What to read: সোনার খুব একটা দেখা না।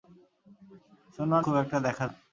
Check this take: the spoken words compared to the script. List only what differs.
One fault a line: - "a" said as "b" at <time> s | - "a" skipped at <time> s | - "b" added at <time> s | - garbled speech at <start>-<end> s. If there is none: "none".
none